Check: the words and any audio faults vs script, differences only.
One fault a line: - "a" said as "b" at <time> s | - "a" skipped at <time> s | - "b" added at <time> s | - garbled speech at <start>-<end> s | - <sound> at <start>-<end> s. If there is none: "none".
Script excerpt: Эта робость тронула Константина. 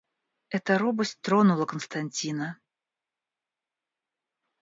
none